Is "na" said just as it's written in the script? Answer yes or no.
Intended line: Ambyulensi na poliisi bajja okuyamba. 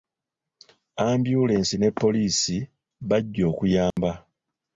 no